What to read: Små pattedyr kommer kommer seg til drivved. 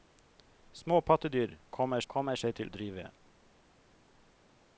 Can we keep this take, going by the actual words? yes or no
yes